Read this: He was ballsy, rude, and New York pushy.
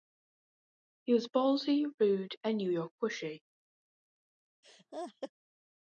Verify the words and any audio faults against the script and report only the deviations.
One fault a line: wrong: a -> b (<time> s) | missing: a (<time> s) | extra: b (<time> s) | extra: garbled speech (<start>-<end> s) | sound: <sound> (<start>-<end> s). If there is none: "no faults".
sound: laugh (4.6-5.3 s)